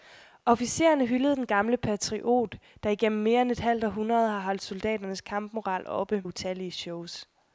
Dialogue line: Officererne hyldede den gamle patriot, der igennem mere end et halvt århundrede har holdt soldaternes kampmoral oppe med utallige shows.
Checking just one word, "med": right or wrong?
wrong